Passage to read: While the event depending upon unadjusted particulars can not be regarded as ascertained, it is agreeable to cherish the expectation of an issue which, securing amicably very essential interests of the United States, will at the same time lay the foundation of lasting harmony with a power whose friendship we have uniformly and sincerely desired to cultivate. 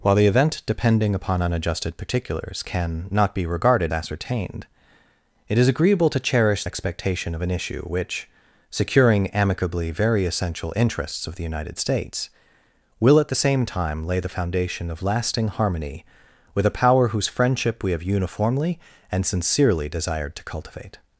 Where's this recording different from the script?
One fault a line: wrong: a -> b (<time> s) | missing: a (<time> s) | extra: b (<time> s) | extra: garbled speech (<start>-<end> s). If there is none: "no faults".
missing: as (3.9 s)
missing: the (6.6 s)